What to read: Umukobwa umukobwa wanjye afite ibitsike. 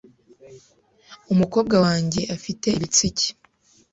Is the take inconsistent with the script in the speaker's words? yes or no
yes